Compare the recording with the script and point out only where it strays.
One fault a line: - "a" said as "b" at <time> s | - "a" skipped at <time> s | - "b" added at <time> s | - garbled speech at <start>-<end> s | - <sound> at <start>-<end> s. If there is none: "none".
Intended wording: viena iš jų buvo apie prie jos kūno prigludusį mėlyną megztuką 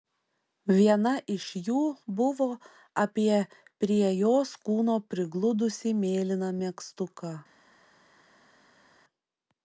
none